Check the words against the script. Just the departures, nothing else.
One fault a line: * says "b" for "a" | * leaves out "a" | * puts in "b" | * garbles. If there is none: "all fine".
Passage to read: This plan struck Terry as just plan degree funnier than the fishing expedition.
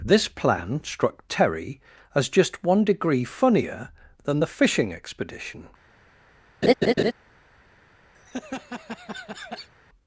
* says "one" for "plan"